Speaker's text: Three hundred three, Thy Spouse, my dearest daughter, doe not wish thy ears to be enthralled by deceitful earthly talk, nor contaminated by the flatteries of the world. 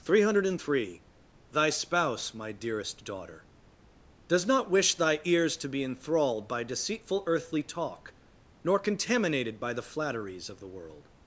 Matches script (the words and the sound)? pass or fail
fail